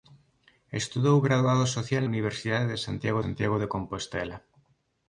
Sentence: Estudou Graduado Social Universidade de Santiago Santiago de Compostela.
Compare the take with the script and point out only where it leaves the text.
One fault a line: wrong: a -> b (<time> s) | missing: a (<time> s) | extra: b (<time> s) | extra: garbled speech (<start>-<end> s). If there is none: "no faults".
no faults